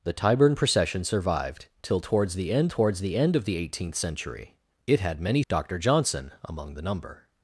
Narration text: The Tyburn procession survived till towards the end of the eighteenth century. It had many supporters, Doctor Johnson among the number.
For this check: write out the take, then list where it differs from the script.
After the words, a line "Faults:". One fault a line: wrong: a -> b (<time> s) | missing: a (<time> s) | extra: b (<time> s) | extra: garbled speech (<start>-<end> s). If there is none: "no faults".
The Tyburn procession survived till towards the end towards the end of the eighteenth century. It had many Doctor Johnson among the number.
Faults:
extra: towards the end (2.7 s)
missing: supporters (5.4 s)